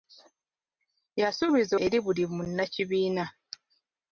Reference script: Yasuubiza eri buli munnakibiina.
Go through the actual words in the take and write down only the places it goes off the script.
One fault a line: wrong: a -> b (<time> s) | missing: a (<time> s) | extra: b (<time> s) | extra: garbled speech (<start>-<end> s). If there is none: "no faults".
no faults